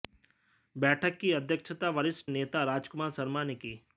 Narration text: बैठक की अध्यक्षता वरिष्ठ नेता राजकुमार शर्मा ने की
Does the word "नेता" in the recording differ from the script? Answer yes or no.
no